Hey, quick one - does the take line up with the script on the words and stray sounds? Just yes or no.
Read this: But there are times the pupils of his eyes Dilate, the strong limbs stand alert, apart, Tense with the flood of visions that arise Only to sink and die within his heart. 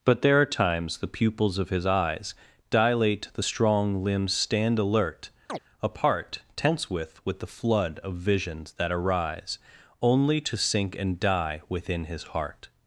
no